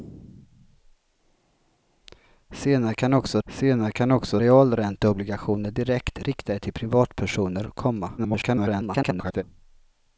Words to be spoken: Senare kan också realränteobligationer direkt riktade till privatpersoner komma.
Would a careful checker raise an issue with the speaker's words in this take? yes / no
yes